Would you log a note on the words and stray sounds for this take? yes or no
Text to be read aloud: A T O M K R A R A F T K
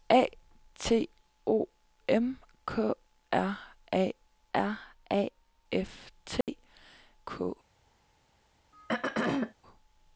yes